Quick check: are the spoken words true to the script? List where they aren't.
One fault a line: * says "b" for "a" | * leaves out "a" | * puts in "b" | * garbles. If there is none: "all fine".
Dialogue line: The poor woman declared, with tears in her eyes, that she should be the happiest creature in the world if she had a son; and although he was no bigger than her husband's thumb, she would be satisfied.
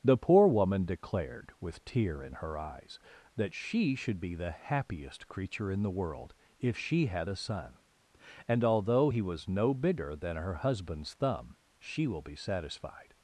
* says "tear" for "tears"
* says "will" for "would"